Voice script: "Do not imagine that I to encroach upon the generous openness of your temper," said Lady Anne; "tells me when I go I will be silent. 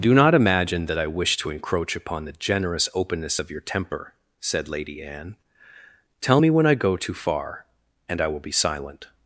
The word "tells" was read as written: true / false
false